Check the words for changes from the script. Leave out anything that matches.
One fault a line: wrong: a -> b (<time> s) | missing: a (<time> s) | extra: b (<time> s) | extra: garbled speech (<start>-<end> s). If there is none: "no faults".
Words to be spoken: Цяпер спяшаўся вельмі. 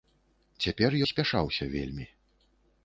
no faults